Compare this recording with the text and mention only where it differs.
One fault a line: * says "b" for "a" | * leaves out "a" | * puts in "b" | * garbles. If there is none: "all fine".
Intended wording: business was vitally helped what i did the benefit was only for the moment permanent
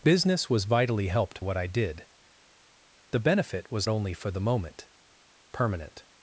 all fine